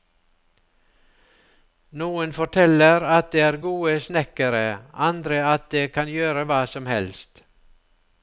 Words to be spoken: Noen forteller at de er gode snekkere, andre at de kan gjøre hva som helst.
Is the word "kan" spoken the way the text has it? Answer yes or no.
yes